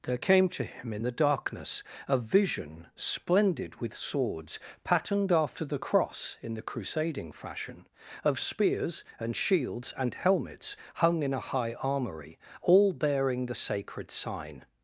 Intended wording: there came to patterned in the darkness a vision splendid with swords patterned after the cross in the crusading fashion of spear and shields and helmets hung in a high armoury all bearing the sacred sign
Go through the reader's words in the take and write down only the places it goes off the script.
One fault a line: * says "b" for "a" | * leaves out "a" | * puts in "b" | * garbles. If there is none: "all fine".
* says "him" for "patterned"
* says "spears" for "spear"